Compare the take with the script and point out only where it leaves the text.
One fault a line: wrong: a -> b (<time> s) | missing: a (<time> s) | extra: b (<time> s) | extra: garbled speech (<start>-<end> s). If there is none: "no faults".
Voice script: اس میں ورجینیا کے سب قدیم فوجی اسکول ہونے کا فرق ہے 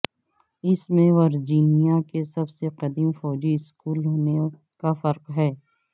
extra: سے (2.5 s)